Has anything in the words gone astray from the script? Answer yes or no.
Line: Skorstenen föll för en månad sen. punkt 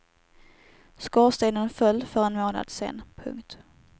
no